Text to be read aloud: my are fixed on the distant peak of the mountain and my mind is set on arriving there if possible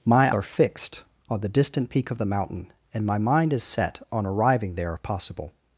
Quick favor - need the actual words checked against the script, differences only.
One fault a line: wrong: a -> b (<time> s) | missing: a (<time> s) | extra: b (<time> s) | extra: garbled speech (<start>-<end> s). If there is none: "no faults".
no faults